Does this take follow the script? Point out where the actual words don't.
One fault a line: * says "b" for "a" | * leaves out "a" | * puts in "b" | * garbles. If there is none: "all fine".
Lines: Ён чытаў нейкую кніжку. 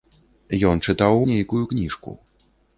all fine